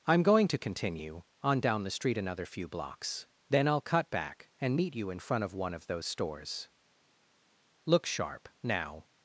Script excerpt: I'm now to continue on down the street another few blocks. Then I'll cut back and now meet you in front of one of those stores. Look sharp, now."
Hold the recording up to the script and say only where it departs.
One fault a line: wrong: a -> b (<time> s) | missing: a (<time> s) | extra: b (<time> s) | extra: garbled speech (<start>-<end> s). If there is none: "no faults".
wrong: now -> going (0.2 s)
missing: now (4.8 s)